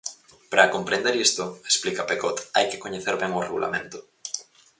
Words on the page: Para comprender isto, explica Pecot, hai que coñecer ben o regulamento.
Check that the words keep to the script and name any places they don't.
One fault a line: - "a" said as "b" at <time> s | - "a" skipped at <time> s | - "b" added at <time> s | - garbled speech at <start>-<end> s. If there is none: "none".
none